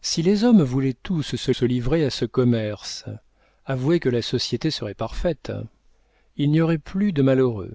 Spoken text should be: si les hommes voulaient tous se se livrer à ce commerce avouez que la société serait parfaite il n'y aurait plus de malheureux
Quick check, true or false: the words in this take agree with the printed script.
true